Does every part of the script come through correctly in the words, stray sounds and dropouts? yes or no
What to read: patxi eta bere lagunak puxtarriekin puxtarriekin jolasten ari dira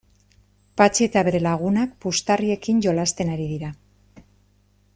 no